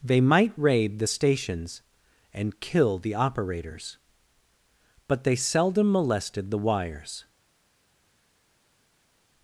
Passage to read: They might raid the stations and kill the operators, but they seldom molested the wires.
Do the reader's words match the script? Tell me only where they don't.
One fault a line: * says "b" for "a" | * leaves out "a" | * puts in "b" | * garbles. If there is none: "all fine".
all fine